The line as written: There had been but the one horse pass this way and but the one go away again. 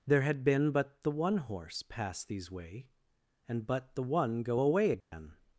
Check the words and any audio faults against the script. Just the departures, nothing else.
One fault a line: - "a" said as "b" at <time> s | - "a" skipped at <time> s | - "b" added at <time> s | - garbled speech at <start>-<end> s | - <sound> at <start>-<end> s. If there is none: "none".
- "this" said as "these" at 2.2 s
- dropout at 5.0-5.1 s